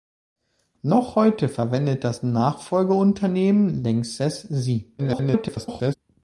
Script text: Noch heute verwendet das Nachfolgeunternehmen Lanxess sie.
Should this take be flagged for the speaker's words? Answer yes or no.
yes